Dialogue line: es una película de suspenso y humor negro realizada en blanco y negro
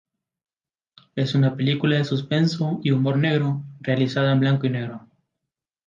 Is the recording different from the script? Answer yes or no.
no